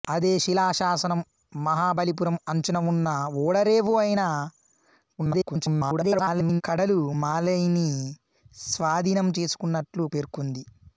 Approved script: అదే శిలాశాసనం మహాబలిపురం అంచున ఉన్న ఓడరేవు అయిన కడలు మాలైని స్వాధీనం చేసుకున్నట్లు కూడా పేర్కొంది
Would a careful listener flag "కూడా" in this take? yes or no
yes